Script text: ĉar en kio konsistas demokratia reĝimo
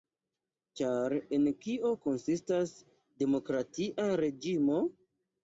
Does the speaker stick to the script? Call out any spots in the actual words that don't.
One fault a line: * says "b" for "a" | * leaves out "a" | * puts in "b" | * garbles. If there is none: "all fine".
all fine